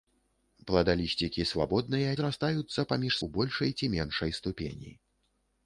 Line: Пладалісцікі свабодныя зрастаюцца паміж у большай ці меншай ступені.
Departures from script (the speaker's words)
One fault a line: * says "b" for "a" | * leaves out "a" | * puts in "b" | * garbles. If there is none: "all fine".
all fine